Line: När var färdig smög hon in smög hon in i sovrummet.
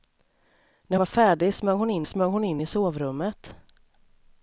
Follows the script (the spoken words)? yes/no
yes